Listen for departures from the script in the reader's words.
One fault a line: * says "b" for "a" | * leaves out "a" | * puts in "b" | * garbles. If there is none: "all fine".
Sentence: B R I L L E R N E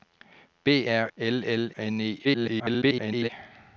* leaves out "I"
* leaves out "E R"
* garbles